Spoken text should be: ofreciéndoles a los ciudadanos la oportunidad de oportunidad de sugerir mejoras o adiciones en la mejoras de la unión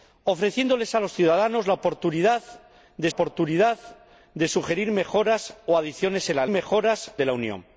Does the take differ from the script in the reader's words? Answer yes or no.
no